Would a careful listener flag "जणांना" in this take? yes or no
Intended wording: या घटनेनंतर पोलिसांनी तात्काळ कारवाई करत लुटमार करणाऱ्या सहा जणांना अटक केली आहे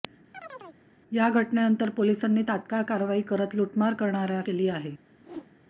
yes